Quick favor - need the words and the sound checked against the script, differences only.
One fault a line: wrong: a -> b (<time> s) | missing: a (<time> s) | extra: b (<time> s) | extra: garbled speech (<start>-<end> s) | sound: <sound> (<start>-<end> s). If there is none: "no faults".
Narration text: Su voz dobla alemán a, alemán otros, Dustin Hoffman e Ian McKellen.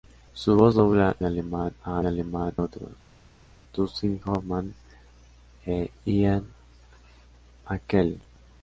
no faults